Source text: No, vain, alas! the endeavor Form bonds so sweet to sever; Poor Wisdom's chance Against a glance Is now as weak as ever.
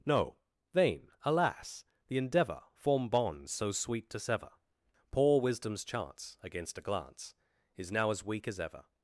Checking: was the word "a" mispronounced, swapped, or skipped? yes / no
no